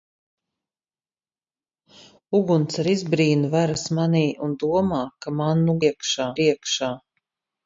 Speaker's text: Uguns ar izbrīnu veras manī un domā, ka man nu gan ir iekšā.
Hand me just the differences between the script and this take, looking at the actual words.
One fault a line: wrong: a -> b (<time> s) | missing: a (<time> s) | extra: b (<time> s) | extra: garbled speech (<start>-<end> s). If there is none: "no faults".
wrong: gan -> iekšā (5.9 s)